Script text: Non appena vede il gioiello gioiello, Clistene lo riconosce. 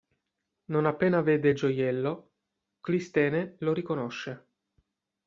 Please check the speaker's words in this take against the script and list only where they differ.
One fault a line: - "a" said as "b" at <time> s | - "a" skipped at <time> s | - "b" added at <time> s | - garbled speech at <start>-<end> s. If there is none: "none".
- "gioiello" skipped at 2.3 s